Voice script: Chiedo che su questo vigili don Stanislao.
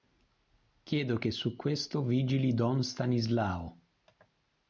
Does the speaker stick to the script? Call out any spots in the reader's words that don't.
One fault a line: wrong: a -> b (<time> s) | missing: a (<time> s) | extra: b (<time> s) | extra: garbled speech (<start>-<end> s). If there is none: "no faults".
no faults